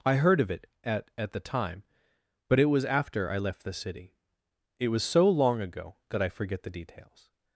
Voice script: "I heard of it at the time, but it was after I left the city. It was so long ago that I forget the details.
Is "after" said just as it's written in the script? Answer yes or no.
yes